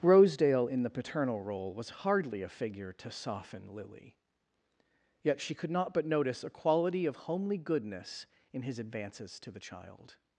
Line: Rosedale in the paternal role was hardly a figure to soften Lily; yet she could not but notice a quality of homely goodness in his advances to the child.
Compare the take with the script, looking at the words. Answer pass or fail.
pass